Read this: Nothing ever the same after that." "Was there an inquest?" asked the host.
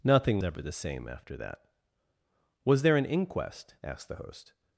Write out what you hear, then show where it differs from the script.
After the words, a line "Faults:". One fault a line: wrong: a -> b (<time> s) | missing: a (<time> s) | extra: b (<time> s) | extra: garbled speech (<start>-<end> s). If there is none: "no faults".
Nothing ever the same after that." "Was there an inquest?" asked the host.
Faults:
no faults